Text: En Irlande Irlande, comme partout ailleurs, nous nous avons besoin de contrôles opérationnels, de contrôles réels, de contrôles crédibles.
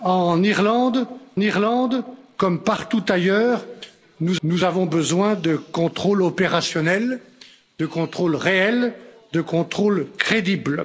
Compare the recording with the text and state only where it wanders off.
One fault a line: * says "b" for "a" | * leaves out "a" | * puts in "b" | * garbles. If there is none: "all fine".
all fine